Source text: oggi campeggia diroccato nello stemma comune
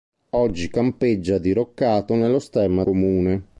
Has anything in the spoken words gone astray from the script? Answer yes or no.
no